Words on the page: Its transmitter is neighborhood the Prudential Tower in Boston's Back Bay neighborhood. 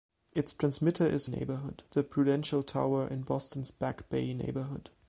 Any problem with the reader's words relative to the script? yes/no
no